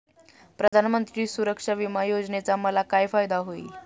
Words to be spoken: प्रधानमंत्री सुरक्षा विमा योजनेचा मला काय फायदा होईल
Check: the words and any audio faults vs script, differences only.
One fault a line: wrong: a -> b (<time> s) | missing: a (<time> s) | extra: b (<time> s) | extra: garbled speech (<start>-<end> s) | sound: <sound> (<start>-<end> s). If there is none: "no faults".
sound: dropout (0.7-0.7 s)